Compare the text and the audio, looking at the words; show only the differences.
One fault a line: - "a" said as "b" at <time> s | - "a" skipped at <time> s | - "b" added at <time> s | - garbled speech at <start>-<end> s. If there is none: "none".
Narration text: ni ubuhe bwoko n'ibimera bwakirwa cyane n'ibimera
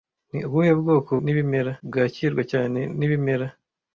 none